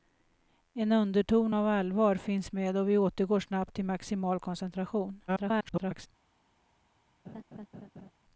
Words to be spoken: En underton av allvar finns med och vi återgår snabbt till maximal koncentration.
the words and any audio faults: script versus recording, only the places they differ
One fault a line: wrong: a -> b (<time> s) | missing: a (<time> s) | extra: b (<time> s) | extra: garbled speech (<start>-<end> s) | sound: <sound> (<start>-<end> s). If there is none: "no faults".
extra: garbled speech (5.3-6.1 s)
sound: laugh (7.2-8.1 s)